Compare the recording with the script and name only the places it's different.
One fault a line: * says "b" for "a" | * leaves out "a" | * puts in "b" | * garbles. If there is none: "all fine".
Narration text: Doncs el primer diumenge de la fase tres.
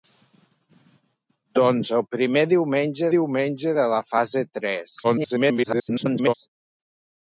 * puts in "diumenge"
* garbles